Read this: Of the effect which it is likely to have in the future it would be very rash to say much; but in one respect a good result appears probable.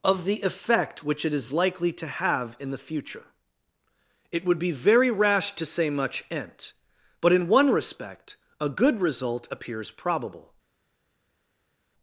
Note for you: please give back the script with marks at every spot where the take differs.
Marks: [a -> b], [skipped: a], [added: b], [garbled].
Of the effect which it is likely to have in the future it would be very rash to say much; [added: ent] but in one respect a good result appears probable.